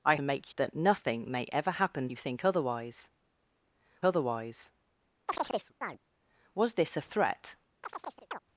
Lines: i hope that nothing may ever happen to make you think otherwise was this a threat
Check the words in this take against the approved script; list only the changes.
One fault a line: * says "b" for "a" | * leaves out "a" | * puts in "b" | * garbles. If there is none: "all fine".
* says "make" for "hope"
* leaves out "to make"
* puts in "otherwise"